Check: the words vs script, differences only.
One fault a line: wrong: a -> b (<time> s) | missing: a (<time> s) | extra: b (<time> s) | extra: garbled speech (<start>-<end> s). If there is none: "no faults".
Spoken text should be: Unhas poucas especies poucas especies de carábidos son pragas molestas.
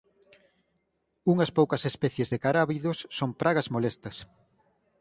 missing: poucas especies (2.3 s)